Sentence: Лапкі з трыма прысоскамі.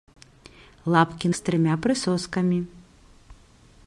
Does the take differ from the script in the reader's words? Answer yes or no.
no